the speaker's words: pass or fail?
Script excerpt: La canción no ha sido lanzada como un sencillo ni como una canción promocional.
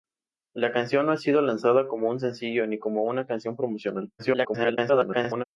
fail